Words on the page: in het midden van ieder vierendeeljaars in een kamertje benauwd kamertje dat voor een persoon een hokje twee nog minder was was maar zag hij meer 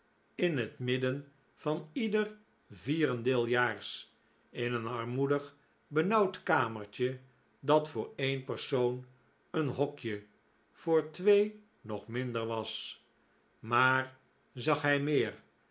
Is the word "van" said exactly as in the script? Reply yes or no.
yes